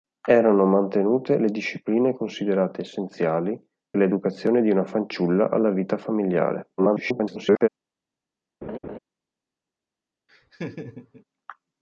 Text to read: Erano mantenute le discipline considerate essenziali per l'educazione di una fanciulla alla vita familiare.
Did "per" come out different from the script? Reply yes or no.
yes